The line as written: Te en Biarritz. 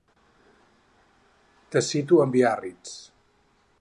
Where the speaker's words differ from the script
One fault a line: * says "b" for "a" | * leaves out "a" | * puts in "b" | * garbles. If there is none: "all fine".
* puts in "cito"